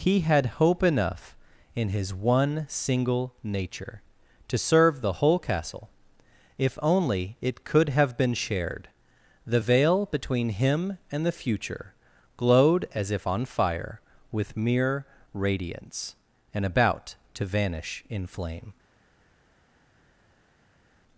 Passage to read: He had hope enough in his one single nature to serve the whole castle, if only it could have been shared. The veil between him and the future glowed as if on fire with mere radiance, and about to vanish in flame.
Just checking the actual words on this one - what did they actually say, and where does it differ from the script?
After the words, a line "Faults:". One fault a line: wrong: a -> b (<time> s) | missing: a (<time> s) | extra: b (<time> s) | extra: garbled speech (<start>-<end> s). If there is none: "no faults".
He had hope enough in his one single nature to serve the whole castle, if only it could have been shared. The veil between him and the future glowed as if on fire with mere radiance, and about to vanish in flame.
Faults:
no faults